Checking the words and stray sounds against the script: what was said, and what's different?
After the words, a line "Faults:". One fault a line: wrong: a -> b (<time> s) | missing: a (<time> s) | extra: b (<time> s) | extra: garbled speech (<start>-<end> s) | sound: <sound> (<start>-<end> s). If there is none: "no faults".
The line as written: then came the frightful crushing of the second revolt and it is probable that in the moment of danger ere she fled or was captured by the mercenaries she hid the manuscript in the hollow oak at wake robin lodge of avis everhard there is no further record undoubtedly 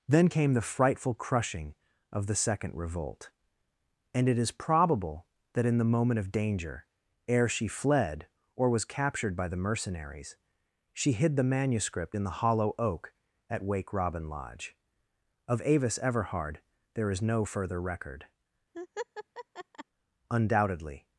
then came the frightful crushing of the second revolt and it is probable that in the moment of danger ere she fled or was captured by the mercenaries she hid the manuscript in the hollow oak at wake robin lodge of avis everhard there is no further record undoubtedly
Faults:
sound: laugh (18.7-19.8 s)